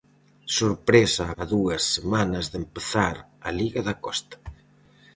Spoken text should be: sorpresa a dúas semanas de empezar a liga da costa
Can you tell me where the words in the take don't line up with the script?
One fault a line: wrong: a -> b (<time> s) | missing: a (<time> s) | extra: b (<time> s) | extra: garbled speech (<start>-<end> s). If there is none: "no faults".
no faults